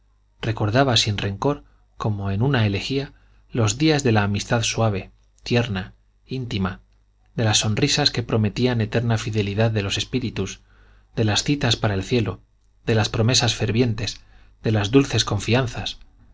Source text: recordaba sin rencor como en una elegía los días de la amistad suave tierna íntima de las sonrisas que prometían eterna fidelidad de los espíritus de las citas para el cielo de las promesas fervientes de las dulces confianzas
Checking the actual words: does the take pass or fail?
pass